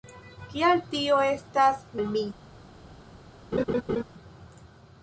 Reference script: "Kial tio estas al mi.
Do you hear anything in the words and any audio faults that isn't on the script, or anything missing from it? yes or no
yes